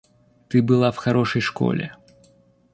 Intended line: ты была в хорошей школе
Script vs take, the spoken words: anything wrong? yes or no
no